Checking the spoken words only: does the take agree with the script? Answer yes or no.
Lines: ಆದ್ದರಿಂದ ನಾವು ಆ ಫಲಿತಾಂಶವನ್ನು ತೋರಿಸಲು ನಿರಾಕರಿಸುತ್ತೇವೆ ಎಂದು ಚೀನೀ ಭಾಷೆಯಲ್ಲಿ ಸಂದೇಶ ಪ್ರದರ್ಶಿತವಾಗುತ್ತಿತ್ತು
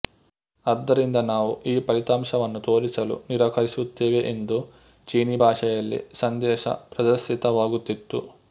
no